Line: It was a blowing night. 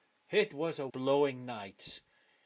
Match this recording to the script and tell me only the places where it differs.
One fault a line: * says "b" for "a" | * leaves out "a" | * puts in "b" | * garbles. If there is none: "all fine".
all fine